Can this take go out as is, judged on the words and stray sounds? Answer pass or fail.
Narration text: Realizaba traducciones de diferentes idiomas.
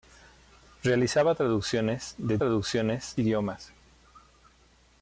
fail